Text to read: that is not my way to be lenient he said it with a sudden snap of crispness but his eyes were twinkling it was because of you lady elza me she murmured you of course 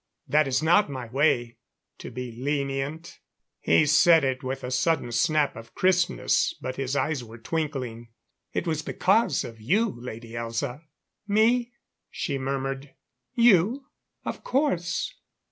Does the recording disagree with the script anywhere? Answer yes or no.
no